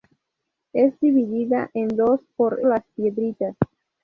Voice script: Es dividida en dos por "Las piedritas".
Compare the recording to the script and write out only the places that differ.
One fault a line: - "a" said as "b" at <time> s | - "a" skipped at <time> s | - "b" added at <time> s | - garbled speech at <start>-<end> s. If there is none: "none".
none